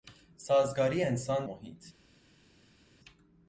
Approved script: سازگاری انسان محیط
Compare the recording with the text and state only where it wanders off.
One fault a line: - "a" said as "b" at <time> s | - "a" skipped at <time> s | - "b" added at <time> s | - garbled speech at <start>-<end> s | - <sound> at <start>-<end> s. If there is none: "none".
none